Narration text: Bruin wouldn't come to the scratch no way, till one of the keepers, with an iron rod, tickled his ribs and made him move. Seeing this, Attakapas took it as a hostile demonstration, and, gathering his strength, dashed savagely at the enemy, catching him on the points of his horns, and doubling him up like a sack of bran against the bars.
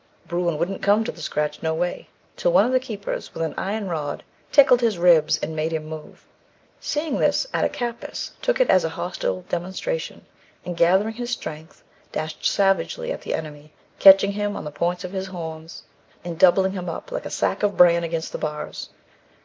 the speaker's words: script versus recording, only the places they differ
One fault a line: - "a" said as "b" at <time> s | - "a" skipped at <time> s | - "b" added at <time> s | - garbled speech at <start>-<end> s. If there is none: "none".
none